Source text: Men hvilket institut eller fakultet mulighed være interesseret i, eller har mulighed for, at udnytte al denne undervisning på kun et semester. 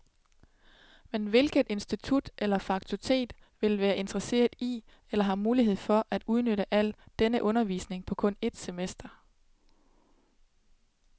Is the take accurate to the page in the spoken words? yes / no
no